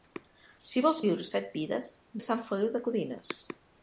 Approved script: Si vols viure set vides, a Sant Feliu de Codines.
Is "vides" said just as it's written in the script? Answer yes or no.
yes